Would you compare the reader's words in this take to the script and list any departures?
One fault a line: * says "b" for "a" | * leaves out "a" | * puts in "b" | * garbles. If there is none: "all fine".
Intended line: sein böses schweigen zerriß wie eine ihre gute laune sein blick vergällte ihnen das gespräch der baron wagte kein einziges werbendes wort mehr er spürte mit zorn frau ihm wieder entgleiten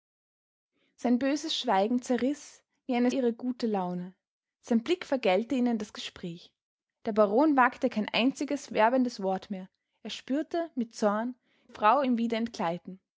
all fine